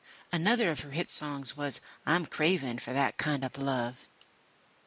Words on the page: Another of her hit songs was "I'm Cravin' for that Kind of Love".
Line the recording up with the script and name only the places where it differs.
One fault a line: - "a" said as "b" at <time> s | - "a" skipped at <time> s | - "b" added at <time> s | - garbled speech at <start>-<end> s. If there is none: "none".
none